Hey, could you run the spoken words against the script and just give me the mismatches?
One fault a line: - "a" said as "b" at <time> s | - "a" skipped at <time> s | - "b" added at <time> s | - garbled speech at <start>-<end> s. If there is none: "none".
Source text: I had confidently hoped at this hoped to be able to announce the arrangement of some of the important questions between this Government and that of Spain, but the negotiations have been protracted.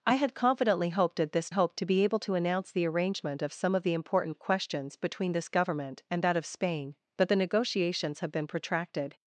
none